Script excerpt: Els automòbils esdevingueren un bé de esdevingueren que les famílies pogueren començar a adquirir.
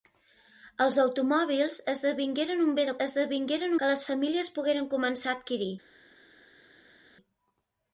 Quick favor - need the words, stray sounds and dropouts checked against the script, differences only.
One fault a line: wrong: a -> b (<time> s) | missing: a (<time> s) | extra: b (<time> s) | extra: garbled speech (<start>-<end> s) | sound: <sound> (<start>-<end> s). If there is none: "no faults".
no faults